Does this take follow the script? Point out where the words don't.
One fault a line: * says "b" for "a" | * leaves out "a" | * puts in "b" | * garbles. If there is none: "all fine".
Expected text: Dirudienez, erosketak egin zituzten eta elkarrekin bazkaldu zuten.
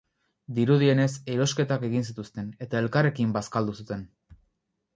all fine